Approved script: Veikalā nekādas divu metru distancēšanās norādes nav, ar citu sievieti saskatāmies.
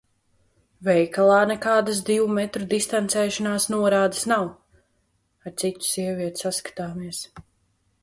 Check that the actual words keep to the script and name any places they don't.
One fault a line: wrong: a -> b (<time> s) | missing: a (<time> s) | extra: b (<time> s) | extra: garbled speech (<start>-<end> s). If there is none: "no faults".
no faults